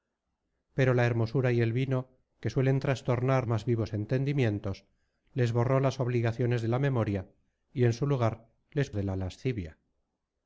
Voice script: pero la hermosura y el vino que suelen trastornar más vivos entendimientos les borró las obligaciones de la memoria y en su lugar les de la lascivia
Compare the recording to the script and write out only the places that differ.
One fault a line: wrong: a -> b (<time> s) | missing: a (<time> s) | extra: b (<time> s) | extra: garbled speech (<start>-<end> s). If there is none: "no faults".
no faults